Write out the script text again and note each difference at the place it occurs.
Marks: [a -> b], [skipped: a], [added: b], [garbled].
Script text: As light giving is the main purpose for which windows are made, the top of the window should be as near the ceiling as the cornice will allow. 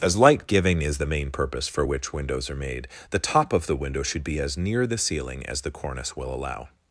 As light giving is the main purpose for which windows are made, the top of the window should be as near the ceiling as the cornice will allow.